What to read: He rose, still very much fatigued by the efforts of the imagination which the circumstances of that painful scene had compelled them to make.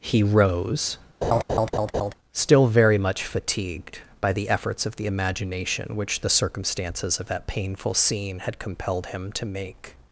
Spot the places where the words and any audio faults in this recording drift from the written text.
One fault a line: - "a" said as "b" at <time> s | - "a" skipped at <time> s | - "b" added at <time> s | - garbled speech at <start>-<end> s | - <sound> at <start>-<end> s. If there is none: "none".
- laugh at 1.2-2.1 s
- "them" said as "him" at 9.1 s